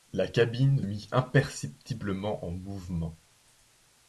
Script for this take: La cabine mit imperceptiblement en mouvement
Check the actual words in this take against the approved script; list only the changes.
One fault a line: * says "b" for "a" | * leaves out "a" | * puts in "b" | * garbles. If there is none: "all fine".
all fine